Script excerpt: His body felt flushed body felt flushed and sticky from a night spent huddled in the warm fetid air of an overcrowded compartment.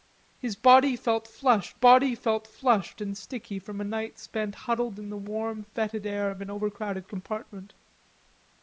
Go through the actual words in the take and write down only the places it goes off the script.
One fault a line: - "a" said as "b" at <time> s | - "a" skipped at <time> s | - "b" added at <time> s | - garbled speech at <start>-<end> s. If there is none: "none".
none